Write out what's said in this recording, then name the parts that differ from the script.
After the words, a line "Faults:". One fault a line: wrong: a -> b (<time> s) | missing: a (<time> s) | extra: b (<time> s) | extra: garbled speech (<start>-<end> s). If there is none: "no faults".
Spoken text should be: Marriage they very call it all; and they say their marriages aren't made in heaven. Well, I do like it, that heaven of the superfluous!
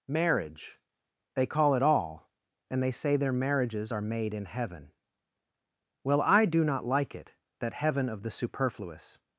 Marriage they call it all; and they say their marriages are made in heaven. Well, I do not like it, that heaven of the superfluous!
Faults:
missing: very (1.4 s)
wrong: aren't -> are (3.9 s)
extra: not (6.6 s)